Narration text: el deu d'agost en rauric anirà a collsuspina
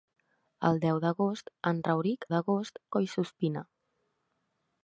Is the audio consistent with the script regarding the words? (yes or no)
no